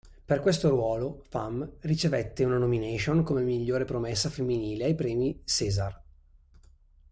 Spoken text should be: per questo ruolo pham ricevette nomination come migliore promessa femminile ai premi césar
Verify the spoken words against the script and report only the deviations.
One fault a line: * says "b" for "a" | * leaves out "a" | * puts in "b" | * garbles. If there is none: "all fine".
* puts in "una"